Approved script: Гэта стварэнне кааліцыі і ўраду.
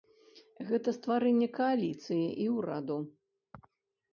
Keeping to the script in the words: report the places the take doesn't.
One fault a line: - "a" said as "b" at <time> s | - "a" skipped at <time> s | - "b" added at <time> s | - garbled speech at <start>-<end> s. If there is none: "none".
none